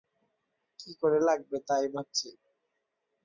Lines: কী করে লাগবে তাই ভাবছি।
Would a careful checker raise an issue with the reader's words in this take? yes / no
no